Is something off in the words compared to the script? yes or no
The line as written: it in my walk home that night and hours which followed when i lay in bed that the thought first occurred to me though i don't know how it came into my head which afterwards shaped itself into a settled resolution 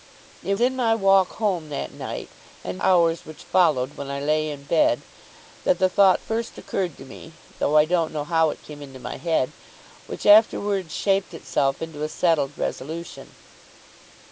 no